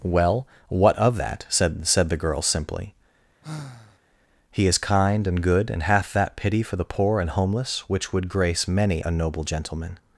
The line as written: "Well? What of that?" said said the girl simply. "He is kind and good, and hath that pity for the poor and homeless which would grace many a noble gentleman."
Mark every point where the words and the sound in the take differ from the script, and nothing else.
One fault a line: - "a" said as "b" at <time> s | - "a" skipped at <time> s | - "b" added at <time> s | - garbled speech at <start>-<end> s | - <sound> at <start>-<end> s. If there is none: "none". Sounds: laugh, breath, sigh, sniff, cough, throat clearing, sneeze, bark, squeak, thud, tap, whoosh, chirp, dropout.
- sigh at 3.4-4.0 s